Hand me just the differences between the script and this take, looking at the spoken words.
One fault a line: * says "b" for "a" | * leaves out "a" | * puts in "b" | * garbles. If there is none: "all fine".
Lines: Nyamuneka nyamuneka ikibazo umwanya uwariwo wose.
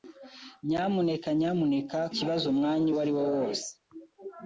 all fine